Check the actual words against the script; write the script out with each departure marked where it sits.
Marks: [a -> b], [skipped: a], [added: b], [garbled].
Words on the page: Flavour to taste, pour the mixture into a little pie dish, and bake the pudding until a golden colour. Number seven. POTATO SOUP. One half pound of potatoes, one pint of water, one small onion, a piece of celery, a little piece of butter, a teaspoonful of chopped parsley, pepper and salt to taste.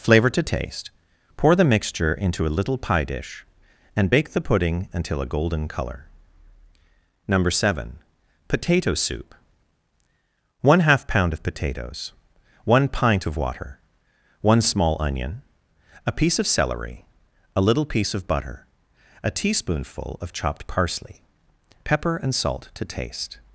Flavour to taste, pour the mixture into a little pie dish, and bake the pudding until a golden colour. Number seven. POTATO SOUP. One half pound of potatoes, one pint of water, one small onion, a piece of celery, a little piece of butter, a teaspoonful of chopped parsley, pepper and salt to taste.